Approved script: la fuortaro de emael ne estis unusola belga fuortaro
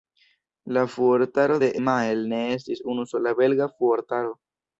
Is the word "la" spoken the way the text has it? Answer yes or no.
yes